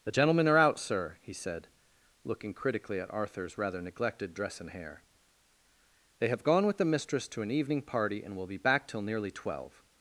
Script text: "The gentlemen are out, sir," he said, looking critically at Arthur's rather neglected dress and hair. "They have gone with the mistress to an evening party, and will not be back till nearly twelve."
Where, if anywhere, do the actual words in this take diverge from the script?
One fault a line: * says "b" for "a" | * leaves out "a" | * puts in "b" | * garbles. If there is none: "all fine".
* leaves out "not"